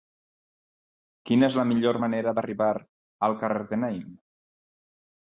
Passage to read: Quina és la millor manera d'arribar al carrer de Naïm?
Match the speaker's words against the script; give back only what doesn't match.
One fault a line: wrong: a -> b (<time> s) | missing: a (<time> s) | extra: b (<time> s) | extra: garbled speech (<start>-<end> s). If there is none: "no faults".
no faults